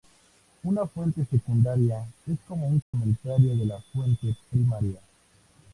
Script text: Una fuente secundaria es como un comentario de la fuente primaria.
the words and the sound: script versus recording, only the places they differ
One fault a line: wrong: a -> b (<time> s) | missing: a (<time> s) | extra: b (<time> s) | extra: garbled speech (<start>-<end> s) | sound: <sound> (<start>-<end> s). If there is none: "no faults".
sound: dropout (2.8-2.9 s)